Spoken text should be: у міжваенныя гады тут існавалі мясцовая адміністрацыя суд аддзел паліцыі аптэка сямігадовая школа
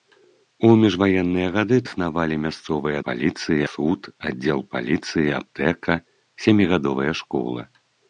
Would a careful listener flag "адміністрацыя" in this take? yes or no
yes